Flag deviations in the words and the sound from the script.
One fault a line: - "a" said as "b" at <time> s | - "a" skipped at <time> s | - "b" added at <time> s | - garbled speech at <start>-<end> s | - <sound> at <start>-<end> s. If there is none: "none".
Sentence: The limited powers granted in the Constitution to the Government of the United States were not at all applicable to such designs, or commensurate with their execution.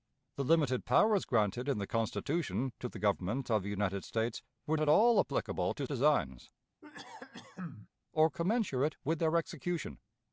- "not" skipped at 4.8 s
- "such" skipped at 5.9 s
- cough at 6.8-7.9 s